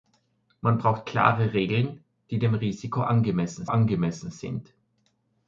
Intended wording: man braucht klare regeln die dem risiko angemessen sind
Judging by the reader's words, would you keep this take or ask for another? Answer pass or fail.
fail